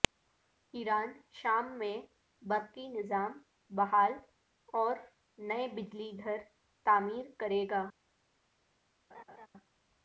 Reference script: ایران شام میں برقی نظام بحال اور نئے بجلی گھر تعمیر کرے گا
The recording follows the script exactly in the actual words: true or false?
true